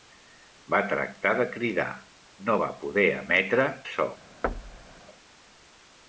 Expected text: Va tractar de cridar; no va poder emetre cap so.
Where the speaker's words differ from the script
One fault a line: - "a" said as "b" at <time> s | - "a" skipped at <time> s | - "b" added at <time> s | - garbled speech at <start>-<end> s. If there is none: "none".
- "cap" skipped at 3.7 s